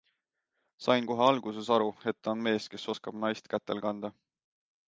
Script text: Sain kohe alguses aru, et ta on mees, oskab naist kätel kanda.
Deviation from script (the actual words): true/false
true